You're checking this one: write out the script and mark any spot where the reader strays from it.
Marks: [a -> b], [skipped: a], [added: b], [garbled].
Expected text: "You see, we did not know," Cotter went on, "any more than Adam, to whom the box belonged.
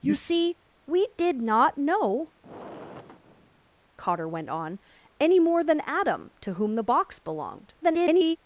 "You see, we did not know," Cotter went on, "any more than Adam, to whom the box belonged. [garbled]